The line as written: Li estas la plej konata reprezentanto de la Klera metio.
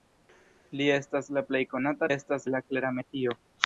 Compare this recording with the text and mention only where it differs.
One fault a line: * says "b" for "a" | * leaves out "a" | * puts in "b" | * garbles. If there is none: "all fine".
* says "estas" for "reprezentanto"